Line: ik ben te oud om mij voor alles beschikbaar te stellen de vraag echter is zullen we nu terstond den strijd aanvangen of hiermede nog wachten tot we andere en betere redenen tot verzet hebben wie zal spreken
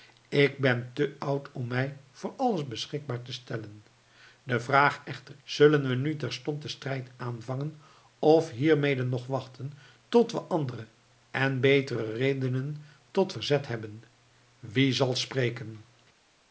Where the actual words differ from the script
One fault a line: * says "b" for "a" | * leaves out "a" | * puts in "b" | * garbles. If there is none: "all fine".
* leaves out "is"